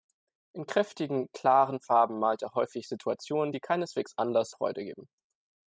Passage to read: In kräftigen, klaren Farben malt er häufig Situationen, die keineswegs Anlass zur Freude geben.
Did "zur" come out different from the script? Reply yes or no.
yes